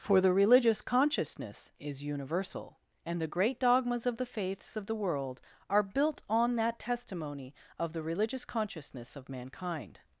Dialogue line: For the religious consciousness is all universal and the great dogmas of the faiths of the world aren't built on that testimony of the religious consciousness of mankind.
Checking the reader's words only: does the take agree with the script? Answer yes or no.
no